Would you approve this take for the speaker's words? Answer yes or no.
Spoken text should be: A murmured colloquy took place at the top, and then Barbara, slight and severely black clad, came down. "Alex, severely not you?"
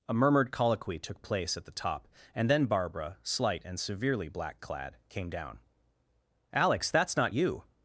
no